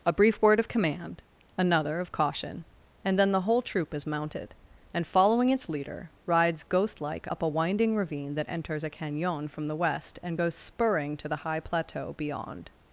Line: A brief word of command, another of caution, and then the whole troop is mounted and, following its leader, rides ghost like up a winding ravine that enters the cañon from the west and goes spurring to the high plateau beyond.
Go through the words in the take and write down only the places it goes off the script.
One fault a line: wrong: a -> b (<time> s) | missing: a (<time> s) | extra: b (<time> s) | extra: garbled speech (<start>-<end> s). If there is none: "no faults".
wrong: the -> a (8.8 s)